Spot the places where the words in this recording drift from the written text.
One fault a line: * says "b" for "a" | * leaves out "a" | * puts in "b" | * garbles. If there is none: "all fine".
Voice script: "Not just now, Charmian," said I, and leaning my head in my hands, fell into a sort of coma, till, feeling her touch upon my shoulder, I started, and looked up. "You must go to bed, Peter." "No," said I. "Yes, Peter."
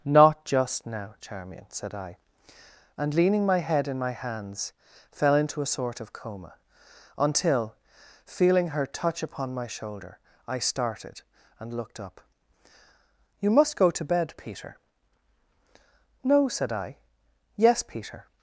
* says "until" for "till"